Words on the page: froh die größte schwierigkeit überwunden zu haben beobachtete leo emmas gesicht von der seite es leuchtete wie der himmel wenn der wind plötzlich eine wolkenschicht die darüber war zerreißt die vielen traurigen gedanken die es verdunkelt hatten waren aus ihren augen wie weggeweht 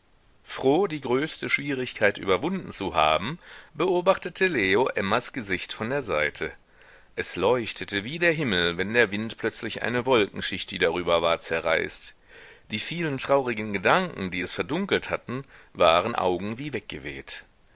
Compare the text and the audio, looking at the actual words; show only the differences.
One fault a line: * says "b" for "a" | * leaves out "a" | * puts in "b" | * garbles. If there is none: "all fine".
* leaves out "aus ihren"